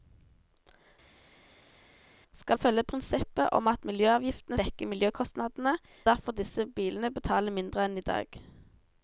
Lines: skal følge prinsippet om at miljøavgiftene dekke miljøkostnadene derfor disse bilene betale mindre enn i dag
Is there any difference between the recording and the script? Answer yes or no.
no